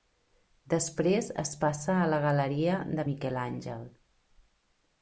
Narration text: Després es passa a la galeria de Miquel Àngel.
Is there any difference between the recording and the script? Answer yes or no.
no